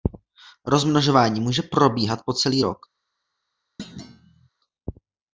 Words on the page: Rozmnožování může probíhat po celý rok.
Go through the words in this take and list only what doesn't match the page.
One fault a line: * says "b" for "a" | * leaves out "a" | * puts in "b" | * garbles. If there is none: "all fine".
all fine